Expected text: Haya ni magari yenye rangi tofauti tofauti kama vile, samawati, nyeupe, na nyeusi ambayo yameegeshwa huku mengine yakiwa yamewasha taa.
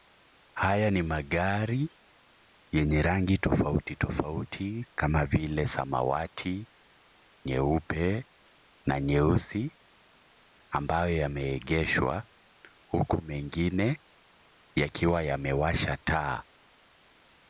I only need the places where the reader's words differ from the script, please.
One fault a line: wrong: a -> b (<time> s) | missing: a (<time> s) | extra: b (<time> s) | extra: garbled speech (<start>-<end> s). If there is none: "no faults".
no faults